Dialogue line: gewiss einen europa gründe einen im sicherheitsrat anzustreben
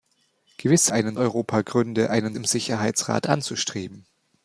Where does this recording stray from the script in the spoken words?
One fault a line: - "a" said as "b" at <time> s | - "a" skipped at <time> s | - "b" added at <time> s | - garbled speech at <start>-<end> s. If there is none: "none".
none